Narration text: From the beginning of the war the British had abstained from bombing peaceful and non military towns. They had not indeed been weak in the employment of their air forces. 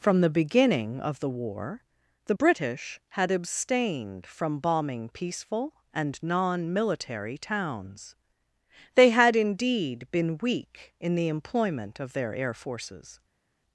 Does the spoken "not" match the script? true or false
false